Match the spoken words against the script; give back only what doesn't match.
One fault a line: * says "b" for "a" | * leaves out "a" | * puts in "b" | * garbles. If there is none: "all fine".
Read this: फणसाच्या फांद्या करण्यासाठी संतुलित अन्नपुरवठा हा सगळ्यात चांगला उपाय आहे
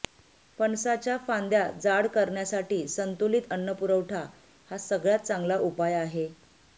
* puts in "जाड"